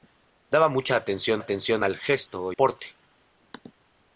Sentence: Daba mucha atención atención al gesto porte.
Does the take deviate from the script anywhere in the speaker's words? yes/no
no